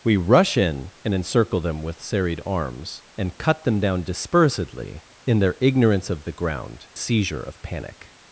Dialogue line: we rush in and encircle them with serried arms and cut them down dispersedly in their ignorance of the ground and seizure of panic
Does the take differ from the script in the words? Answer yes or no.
yes